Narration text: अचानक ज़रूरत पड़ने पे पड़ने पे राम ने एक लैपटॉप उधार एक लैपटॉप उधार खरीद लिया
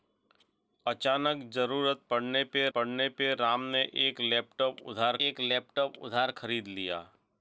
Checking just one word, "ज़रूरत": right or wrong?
right